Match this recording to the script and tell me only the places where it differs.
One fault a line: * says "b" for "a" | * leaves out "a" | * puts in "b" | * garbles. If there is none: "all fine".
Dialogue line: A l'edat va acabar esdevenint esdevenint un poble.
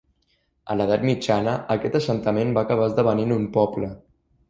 * puts in "mitjana aquest assentament"
* leaves out "esdevenint"